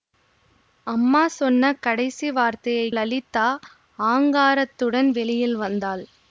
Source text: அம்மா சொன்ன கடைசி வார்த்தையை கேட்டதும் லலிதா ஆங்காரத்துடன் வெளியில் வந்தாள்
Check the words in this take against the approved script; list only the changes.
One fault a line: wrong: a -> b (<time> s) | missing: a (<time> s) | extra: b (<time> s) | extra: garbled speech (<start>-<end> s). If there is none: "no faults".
missing: கேட்டதும் (2.9 s)